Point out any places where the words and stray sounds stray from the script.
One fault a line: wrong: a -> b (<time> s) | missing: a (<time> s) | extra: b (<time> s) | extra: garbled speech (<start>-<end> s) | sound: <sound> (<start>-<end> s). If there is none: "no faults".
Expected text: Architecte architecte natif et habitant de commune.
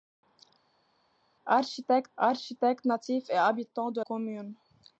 no faults